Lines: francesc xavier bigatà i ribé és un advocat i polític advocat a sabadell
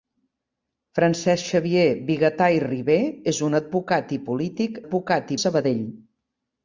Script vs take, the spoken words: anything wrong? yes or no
no